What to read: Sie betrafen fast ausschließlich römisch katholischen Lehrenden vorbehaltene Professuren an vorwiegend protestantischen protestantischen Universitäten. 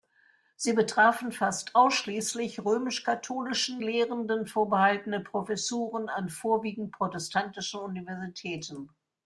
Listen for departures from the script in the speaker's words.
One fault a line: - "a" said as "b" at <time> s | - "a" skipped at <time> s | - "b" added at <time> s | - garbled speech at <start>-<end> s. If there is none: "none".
- "protestantischen" skipped at 7.8 s